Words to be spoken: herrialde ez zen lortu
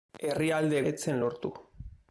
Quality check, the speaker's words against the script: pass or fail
pass